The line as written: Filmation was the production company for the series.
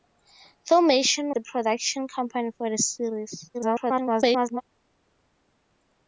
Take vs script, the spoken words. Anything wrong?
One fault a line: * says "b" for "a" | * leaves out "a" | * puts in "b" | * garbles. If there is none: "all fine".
* leaves out "was"
* garbles